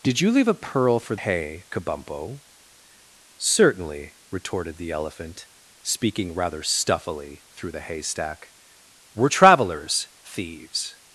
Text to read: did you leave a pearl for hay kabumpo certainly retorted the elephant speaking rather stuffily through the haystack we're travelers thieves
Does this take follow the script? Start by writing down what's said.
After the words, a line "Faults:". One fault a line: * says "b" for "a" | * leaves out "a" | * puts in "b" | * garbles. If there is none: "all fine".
did you leave a pearl for hay kabumpo certainly retorted the elephant speaking rather stuffily through the haystack we're travelers thieves
Faults:
all fine